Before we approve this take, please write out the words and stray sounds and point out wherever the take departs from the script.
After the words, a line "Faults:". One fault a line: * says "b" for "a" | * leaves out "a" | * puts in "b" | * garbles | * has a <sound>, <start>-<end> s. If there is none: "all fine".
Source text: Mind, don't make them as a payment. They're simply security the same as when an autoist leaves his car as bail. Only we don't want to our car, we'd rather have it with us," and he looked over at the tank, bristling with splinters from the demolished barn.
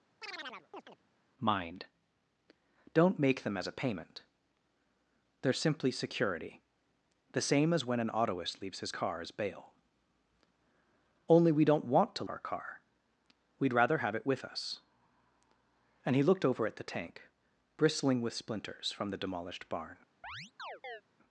Mind, don't make them as a payment. They're simply security the same as when an autoist leaves his car as bail. Only we don't want to our car, we'd rather have it with us," and he looked over at the tank, bristling with splinters from the demolished barn.
Faults:
* has a chirp, 0.2-1.0 s
* has a chirp, 20.2-21.0 s